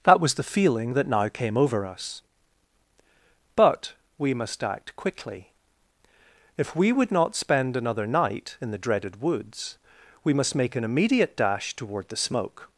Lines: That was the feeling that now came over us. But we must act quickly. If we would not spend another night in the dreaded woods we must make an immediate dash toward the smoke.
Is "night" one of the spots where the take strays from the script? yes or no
no